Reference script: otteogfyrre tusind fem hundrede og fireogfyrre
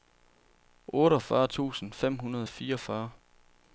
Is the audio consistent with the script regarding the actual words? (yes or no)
yes